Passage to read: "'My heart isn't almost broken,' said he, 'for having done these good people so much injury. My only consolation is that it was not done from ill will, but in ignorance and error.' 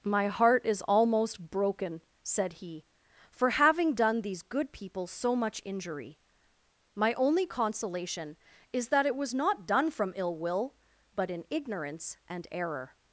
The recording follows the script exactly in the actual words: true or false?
false